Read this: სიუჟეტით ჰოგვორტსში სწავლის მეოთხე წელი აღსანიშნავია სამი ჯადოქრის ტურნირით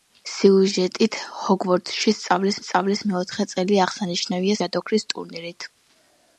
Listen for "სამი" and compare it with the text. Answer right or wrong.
wrong